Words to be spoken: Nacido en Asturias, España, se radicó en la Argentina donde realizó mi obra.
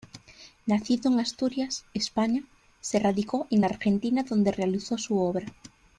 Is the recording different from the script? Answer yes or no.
yes